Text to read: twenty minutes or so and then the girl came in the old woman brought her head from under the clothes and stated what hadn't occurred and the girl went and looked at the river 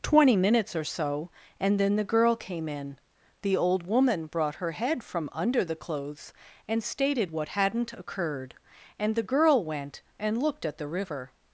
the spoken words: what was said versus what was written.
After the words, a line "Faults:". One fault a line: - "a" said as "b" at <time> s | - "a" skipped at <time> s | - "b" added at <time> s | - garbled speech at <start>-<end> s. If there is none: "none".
twenty minutes or so and then the girl came in the old woman brought her head from under the clothes and stated what hadn't occurred and the girl went and looked at the river
Faults:
none